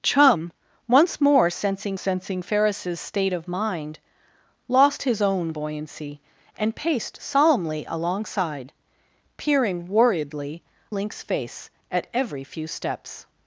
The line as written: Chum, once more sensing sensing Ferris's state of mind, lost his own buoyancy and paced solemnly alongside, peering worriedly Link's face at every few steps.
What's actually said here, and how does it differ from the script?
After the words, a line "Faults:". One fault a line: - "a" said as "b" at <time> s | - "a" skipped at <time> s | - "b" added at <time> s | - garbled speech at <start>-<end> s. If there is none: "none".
Chum, once more sensing sensing Ferris's state of mind, lost his own buoyancy and paced solemnly alongside, peering worriedly Link's face at every few steps.
Faults:
none